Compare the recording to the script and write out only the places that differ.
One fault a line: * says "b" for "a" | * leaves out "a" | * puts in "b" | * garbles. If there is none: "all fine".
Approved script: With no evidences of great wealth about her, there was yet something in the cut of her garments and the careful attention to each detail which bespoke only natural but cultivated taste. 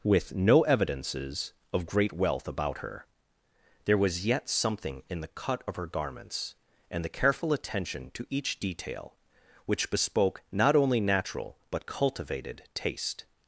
* puts in "not"